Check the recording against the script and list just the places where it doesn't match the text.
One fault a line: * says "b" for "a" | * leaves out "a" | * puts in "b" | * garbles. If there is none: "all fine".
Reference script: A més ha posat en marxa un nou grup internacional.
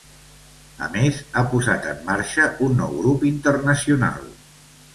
all fine